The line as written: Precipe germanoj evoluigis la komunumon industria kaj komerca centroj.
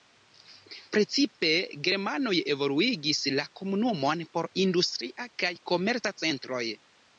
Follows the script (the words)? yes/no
no